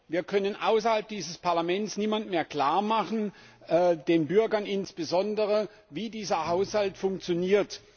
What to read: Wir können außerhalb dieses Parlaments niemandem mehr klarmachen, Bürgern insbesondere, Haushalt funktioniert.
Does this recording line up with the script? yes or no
no